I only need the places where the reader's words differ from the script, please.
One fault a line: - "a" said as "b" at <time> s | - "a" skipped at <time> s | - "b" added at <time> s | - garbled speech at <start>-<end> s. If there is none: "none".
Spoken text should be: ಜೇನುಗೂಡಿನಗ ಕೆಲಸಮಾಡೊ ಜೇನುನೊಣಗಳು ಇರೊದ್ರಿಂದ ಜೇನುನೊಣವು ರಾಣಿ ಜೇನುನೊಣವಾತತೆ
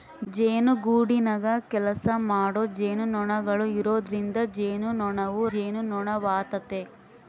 - "ರಾಣಿ" skipped at 5.4 s